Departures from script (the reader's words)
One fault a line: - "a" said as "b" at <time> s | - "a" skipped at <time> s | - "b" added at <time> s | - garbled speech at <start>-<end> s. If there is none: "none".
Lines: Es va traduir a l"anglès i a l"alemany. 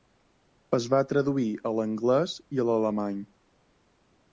none